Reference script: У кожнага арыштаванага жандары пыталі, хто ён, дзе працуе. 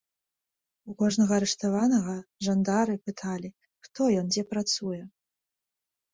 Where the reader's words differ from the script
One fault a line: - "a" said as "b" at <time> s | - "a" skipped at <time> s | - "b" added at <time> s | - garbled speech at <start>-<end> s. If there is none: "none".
none